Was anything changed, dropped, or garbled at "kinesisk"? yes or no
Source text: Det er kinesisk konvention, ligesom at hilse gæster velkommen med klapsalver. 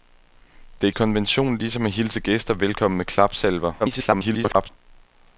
yes